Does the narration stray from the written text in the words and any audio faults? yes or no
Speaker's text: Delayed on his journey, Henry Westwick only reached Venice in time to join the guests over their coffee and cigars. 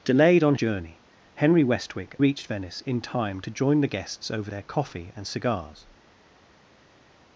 yes